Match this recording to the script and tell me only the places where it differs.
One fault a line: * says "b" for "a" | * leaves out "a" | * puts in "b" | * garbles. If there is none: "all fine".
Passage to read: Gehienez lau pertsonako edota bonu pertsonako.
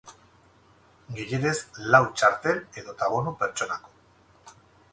* says "txartel" for "pertsonako"